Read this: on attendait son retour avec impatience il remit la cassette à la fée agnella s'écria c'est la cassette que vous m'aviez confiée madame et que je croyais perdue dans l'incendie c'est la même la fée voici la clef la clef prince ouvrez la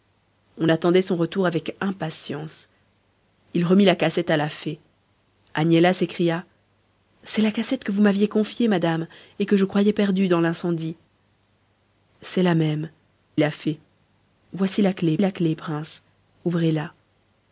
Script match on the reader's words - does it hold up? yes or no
yes